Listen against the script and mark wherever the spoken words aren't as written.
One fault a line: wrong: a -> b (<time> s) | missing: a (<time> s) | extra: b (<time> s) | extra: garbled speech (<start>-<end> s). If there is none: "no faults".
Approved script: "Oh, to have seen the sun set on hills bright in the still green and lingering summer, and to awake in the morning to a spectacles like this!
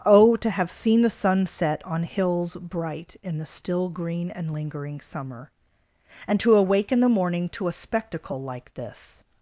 wrong: spectacles -> spectacle (7.7 s)